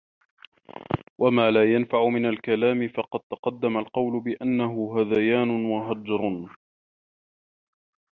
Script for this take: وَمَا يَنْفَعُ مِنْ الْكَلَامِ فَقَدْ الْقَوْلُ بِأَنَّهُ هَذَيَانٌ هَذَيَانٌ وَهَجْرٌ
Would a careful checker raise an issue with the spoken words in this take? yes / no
yes